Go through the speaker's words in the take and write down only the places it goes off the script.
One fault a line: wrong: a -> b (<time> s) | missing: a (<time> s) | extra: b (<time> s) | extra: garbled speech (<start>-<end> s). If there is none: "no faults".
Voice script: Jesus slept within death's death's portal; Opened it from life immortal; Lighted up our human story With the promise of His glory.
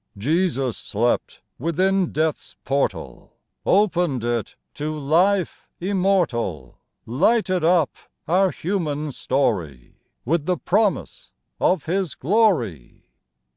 missing: death's (2.5 s)
wrong: from -> to (4.7 s)